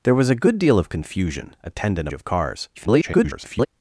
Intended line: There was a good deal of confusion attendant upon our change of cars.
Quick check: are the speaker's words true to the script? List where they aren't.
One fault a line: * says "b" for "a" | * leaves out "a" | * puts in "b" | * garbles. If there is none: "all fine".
* leaves out "upon our change"
* garbles